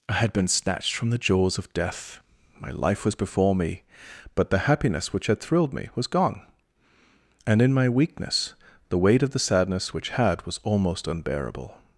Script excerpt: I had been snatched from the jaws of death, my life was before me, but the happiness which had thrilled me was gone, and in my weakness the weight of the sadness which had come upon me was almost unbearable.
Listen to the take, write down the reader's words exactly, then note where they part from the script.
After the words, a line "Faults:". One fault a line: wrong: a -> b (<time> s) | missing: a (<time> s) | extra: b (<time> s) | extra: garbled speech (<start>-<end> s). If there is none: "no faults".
I had been snatched from the jaws of death, my life was before me, but the happiness which had thrilled me was gone, and in my weakness the weight of the sadness which had was almost unbearable.
Faults:
missing: come upon me (10.4 s)